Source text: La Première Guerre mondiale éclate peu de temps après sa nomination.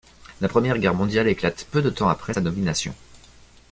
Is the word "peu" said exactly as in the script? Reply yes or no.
yes